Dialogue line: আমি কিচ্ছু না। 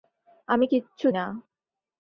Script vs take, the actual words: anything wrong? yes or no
no